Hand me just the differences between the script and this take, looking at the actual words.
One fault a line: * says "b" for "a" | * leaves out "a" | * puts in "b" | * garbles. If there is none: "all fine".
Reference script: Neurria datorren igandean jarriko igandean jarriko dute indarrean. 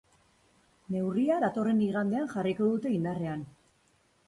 * leaves out "igandean jarriko"